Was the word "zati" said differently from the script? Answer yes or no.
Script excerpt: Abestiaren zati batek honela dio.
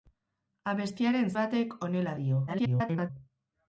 yes